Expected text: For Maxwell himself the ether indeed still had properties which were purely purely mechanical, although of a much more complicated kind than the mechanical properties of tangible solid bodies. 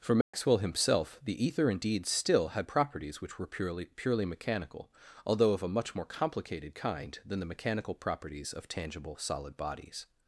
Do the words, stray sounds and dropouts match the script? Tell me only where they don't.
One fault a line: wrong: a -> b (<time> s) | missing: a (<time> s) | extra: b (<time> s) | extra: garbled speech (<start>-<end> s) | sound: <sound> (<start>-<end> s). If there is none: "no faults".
sound: dropout (0.2-0.3 s)